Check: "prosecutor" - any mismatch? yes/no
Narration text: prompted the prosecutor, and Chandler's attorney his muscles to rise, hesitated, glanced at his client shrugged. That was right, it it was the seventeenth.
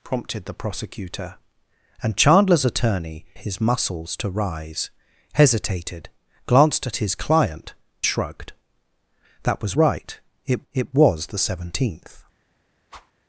no